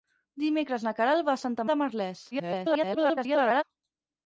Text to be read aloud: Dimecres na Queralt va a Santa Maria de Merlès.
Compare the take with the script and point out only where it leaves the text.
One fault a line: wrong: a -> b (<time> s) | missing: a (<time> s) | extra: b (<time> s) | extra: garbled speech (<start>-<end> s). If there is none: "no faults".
missing: Maria (1.6 s)
extra: garbled speech (2.3-3.6 s)